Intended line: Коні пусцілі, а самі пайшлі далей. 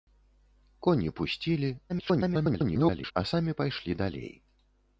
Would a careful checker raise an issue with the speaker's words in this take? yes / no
yes